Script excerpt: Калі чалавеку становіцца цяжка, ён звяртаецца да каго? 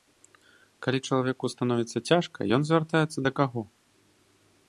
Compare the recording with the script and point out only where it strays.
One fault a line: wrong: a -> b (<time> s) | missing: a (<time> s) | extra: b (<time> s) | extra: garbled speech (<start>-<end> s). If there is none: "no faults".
no faults